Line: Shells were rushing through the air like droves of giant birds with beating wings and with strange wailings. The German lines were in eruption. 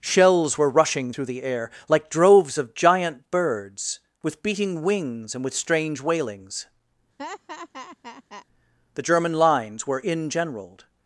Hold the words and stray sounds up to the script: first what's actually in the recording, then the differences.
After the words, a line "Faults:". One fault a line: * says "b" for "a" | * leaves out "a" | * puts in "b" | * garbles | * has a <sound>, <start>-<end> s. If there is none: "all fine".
Shells were rushing through the air like droves of giant birds with beating wings and with strange wailings. The German lines were in generaled.
Faults:
* has a laugh, 7.2-8.5 s
* says "generaled" for "eruption"